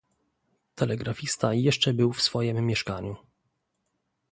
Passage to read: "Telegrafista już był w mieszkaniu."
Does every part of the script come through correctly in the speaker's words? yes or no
no